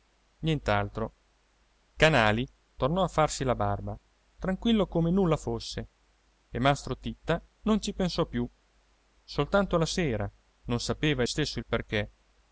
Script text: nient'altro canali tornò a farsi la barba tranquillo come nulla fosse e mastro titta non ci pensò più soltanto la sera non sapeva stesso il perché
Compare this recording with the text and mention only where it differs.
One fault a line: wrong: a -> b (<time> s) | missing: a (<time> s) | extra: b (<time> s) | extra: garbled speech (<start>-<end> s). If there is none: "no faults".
no faults